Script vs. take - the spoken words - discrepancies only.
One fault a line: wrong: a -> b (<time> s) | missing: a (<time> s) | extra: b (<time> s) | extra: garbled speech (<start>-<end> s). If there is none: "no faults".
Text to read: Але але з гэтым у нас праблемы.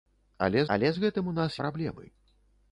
no faults